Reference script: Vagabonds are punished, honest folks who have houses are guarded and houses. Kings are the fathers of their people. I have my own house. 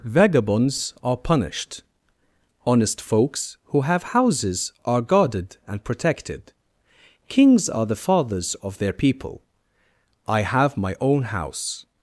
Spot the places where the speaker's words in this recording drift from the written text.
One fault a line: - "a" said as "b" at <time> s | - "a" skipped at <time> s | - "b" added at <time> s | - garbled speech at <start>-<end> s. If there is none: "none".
- "houses" said as "protected" at 5.8 s